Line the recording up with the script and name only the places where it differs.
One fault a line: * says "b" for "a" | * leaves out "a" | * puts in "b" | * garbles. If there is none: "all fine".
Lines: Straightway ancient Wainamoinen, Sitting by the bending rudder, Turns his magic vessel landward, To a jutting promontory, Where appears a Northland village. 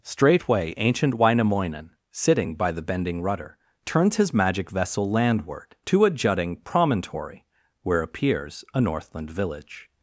all fine